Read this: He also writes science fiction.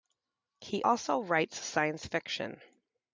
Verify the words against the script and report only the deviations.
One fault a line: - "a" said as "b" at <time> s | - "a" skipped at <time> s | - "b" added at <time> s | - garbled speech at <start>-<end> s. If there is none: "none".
none